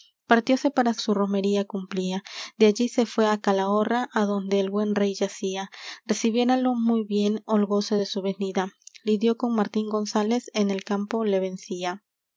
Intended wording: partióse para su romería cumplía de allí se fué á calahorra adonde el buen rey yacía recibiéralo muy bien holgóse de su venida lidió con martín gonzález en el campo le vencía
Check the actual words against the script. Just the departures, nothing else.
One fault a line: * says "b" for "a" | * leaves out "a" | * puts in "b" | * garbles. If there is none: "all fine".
all fine